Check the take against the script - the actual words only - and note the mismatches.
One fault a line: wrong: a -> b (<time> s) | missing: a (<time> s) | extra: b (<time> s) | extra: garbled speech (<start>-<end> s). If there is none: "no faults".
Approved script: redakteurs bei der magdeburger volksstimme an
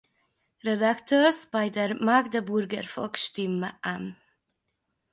no faults